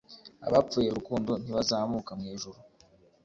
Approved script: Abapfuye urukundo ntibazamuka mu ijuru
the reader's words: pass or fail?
pass